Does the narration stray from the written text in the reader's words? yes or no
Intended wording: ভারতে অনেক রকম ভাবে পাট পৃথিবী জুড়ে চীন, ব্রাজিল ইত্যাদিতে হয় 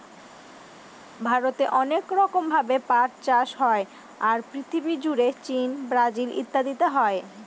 yes